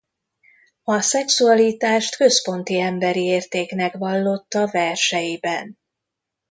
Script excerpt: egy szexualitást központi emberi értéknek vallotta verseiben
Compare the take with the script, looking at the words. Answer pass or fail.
fail